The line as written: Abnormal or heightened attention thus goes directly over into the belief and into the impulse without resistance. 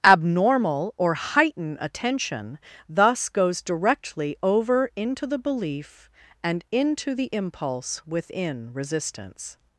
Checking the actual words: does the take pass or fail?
fail